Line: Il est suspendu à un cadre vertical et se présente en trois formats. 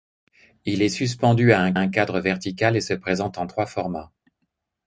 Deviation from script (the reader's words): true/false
true